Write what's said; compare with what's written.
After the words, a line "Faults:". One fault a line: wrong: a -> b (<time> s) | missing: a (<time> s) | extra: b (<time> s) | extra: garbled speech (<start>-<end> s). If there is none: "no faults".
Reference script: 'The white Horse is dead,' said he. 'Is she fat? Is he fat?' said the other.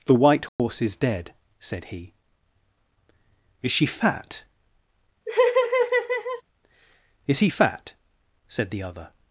'The white Horse is dead,' said he. 'Is she fat? Is he fat?' said the other.
Faults:
no faults